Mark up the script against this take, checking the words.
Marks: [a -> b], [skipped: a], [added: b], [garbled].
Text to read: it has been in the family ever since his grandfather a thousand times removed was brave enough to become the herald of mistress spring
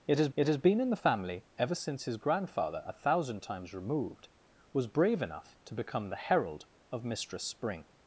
it has [added: it has] been in the family ever since his grandfather a thousand times removed was brave enough to become the herald of mistress spring